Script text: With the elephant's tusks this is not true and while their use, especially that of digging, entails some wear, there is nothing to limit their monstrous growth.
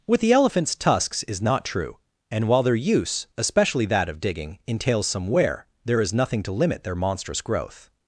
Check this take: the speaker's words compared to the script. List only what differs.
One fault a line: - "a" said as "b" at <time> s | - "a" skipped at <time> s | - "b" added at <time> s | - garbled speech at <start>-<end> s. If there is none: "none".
- "this" skipped at 1.2 s